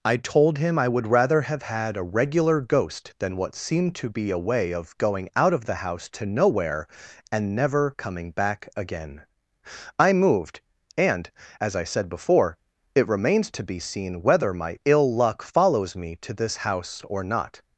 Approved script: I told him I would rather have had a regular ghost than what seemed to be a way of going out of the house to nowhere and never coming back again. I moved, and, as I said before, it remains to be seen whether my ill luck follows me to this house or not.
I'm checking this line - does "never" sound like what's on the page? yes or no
yes